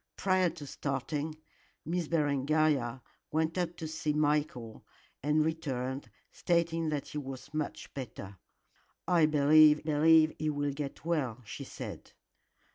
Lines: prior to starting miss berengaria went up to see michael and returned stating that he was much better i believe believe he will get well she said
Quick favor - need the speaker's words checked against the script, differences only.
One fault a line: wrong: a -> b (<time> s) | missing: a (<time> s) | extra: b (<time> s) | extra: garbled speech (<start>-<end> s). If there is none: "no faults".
no faults